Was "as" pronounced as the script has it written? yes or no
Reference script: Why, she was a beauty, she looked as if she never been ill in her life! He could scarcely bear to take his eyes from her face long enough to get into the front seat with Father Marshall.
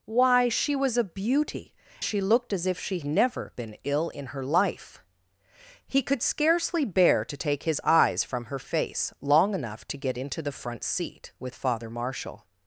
yes